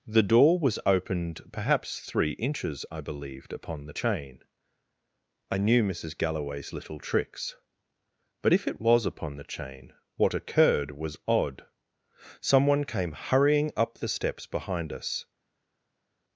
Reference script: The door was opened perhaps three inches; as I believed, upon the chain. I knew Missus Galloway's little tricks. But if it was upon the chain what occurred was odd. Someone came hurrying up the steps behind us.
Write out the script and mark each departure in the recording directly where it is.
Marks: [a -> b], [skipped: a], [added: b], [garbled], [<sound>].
The door was opened perhaps three inches; [skipped: as] I believed, upon the chain. I knew Missus Galloway's little tricks. But if it was upon the chain what occurred was odd. Someone came hurrying up the steps behind us.